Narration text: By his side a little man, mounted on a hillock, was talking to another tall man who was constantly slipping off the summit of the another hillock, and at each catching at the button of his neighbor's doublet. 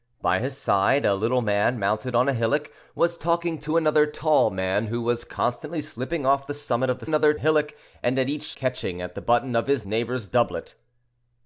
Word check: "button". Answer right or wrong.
right